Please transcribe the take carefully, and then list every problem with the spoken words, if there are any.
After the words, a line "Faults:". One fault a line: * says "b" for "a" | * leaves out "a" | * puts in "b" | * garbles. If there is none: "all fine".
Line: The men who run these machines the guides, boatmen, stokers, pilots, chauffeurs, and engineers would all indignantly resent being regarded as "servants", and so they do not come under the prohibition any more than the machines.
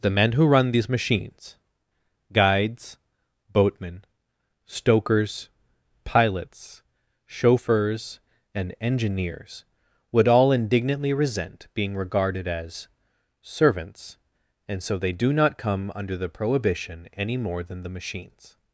The men who run these machines guides, boatmen, stokers, pilots, chauffeurs, and engineers would all indignantly resent being regarded as "servants", and so they do not come under the prohibition any more than the machines.
Faults:
* leaves out "the"